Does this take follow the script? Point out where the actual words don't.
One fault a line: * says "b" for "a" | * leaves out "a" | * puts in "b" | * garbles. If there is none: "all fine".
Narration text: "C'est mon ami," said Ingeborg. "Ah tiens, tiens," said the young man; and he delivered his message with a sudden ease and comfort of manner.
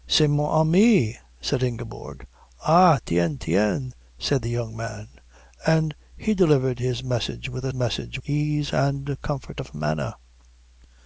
* says "message" for "sudden"